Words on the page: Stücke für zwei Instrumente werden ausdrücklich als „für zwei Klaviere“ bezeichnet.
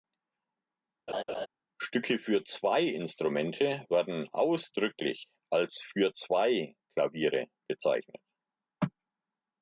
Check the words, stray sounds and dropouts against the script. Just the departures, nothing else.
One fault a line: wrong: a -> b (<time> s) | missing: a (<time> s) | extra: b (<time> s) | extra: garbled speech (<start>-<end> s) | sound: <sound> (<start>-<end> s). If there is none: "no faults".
sound: laugh (1.1-1.5 s)